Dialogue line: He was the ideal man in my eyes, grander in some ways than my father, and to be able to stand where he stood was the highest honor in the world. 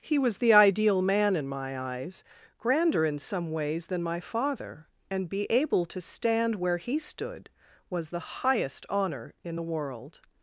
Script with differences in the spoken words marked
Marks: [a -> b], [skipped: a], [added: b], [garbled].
He was the ideal man in my eyes, grander in some ways than my father, and [skipped: to] be able to stand where he stood was the highest honor in the world.